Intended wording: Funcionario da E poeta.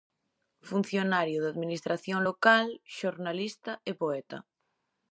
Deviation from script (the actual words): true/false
true